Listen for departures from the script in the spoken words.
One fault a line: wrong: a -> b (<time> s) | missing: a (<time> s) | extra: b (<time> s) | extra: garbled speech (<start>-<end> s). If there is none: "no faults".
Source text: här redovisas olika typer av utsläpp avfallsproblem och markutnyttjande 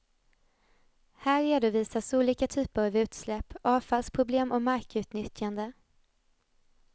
no faults